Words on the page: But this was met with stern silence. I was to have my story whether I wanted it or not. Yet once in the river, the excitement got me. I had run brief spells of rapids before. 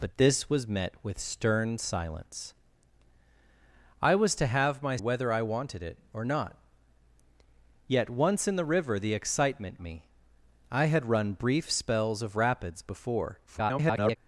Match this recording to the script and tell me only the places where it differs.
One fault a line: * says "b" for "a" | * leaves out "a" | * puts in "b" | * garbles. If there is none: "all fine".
* leaves out "story"
* leaves out "got"
* garbles